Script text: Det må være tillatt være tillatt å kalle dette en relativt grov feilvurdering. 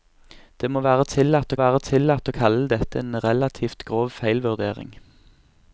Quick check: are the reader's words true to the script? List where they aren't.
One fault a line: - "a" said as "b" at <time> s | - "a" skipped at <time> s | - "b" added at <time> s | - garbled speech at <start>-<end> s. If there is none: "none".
none